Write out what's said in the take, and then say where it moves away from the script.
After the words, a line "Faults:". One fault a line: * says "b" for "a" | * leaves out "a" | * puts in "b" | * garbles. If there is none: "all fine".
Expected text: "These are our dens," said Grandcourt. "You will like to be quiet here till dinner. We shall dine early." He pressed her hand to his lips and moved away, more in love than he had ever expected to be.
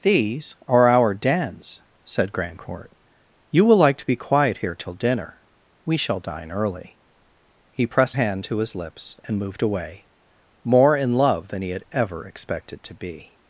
"These are our dens," said Grandcourt. "You will like to be quiet here till dinner. We shall dine early." He pressed hand to his lips and moved away, more in love than he had ever expected to be.
Faults:
* leaves out "her"